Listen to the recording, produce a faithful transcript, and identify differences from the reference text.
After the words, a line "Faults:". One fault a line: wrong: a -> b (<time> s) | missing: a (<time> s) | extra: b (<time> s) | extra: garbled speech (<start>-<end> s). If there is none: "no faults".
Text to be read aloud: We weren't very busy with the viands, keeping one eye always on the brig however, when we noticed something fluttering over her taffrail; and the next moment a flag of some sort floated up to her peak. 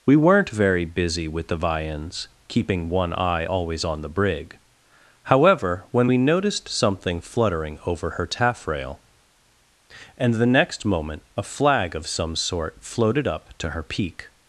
We weren't very busy with the viands, keeping one eye always on the brig however, when we noticed something fluttering over her taffrail; and the next moment a flag of some sort floated up to her peak.
Faults:
no faults